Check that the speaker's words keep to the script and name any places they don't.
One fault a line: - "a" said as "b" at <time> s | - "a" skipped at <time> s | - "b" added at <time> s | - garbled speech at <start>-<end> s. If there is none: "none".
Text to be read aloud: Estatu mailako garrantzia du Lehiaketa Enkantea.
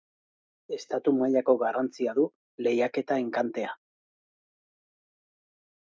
none